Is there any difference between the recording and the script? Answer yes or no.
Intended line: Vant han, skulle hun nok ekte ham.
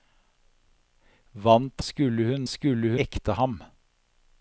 yes